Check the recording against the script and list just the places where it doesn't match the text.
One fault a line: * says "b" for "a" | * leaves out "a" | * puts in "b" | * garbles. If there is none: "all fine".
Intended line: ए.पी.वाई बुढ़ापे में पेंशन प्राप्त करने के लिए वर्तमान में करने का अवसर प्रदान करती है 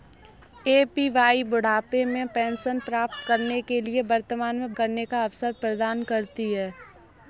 all fine